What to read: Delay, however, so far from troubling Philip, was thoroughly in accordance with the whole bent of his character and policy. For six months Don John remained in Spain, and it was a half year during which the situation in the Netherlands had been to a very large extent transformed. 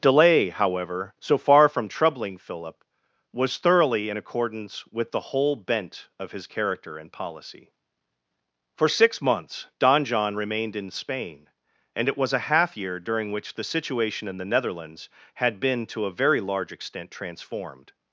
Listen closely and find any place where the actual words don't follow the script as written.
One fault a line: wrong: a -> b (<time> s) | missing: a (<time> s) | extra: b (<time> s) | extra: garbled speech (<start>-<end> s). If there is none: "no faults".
no faults